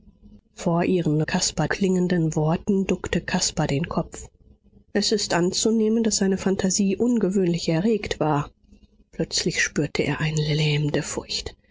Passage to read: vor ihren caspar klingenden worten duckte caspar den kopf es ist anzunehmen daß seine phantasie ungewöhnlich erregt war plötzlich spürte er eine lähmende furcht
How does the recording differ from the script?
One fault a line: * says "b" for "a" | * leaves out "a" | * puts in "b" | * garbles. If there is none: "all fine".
all fine